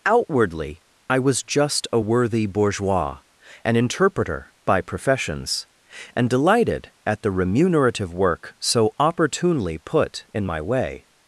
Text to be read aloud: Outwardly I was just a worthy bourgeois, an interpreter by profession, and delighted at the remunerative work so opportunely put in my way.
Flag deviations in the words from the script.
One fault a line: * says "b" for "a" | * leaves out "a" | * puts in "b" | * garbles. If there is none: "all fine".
* says "professions" for "profession"